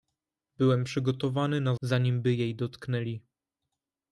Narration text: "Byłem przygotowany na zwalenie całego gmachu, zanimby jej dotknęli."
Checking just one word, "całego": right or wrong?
wrong